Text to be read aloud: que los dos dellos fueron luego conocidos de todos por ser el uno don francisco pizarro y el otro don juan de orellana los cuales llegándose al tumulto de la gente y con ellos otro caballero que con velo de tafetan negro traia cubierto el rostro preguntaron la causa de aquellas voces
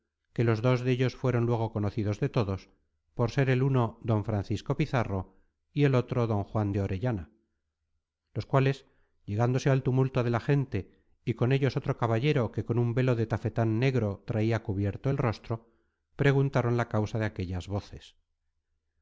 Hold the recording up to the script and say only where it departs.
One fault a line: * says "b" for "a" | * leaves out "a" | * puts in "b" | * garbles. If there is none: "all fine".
* puts in "un"